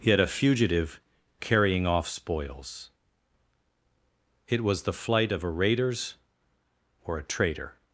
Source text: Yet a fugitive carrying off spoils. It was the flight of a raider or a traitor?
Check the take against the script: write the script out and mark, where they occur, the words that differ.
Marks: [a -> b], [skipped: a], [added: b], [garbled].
Yet a fugitive carrying off spoils. It was the flight of a [raider -> raiders] or a traitor?